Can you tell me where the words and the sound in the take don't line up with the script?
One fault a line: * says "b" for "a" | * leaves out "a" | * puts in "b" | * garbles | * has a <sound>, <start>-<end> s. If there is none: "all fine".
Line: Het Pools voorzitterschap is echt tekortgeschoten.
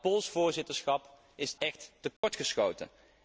* has a dropout, 2.2-2.2 s